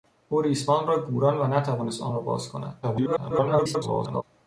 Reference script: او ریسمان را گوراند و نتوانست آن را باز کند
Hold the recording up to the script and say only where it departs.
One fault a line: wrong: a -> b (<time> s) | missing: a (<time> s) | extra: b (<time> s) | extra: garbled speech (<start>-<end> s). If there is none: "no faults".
extra: garbled speech (2.8-4.2 s)